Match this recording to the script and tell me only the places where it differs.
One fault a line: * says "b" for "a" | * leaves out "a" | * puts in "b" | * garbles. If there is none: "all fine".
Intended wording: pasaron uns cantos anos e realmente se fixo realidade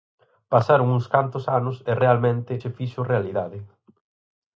all fine